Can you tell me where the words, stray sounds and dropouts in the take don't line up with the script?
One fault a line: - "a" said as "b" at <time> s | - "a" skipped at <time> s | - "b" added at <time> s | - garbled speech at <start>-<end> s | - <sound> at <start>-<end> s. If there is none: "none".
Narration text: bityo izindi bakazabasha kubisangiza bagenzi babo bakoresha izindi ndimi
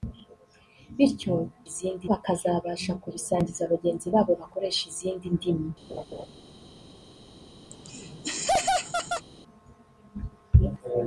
- laugh at 5.9-6.3 s
- laugh at 7.7-9.3 s